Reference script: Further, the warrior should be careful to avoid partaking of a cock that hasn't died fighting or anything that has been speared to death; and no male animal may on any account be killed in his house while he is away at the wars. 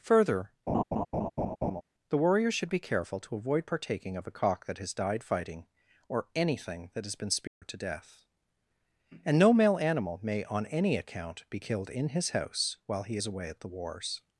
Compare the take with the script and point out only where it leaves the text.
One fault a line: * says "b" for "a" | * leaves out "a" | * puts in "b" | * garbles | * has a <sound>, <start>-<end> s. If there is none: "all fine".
* has a laugh, 0.7-1.8 s
* says "has" for "hasn't"
* has a dropout, 7.5-7.6 s